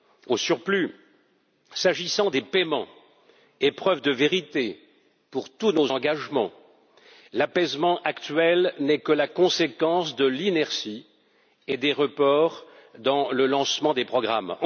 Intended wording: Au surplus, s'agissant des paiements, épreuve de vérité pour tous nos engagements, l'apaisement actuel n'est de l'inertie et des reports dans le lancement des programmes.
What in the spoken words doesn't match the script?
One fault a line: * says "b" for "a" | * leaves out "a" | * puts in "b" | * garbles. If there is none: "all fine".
* puts in "que la conséquence"